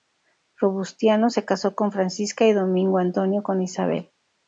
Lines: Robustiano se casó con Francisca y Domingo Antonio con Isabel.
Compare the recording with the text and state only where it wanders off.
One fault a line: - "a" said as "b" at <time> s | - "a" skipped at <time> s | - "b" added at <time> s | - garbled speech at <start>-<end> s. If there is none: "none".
none